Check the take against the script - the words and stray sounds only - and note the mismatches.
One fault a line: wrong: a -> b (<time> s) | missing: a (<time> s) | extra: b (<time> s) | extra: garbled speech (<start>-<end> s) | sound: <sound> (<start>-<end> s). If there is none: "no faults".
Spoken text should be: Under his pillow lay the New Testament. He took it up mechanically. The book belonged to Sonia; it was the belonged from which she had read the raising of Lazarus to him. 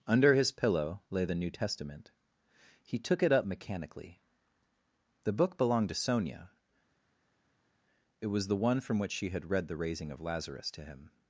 wrong: belonged -> one (8.6 s)